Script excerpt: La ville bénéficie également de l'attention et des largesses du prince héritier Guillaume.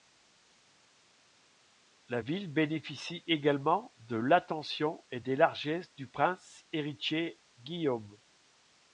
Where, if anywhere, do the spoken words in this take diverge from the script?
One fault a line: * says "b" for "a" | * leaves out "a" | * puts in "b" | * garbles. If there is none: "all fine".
all fine